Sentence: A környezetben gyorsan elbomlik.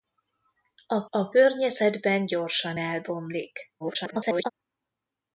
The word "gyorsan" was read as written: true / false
true